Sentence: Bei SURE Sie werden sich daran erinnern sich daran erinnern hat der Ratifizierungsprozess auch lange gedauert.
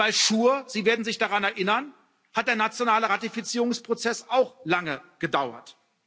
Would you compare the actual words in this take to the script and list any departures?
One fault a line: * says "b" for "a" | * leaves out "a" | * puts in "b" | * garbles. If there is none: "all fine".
* leaves out "sich daran erinnern"
* puts in "nationale"